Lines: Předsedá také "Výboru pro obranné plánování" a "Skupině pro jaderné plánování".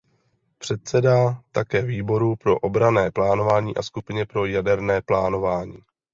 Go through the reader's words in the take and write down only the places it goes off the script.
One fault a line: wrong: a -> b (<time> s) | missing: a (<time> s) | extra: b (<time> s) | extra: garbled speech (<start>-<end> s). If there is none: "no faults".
no faults